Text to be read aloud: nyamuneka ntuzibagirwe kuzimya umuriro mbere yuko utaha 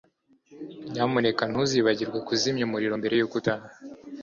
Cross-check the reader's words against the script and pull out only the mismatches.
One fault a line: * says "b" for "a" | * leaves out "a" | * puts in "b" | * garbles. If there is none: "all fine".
all fine